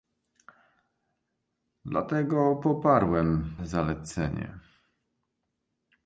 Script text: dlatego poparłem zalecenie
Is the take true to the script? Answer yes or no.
yes